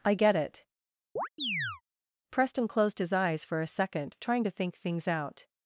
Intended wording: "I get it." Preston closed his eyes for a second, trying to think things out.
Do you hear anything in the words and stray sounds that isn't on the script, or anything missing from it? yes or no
yes